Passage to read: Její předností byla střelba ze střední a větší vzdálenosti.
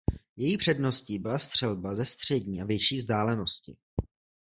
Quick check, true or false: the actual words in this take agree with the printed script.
true